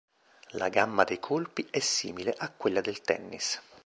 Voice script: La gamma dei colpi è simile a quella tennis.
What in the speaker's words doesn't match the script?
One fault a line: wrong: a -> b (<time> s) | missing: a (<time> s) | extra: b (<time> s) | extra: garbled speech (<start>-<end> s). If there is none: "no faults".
extra: del (2.8 s)